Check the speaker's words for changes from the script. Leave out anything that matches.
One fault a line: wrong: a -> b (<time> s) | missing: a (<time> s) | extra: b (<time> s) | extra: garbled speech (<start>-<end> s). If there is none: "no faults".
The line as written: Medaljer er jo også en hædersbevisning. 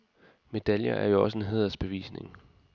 no faults